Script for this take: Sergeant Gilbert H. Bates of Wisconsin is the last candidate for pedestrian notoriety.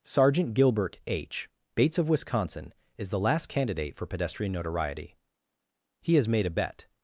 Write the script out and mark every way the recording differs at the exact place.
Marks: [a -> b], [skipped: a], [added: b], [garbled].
Sergeant Gilbert H. Bates of Wisconsin is the last candidate for pedestrian notoriety. [added: He has made a bet]